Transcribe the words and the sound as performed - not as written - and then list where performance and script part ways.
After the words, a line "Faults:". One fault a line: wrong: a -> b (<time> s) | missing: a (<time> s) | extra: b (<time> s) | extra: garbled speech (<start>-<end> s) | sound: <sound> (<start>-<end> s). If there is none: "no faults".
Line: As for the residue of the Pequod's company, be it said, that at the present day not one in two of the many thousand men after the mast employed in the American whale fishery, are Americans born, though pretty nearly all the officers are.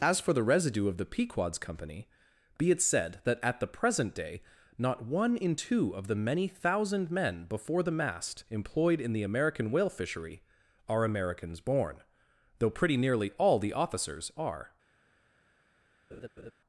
As for the residue of the Pequod's company, be it said, that at the present day not one in two of the many thousand men before the mast employed in the American whale fishery, are Americans born, though pretty nearly all the officers are.
Faults:
wrong: after -> before (7.5 s)
sound: laugh (16.1-16.5 s)